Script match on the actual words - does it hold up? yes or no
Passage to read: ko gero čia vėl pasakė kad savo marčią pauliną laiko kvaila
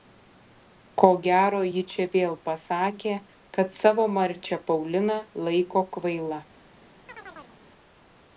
no